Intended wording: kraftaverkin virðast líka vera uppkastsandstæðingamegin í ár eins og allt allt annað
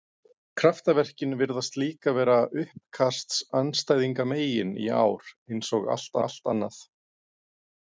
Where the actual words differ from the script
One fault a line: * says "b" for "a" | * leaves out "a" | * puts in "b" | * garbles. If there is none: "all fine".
all fine